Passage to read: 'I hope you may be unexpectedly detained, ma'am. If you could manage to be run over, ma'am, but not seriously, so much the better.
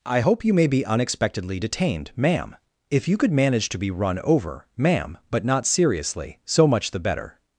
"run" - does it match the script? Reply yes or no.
yes